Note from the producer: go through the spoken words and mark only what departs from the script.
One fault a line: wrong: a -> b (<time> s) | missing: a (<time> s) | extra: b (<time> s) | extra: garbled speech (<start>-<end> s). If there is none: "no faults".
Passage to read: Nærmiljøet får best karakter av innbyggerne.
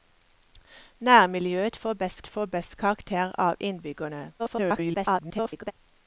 extra: får best (2.3 s)
extra: garbled speech (4.4-5.7 s)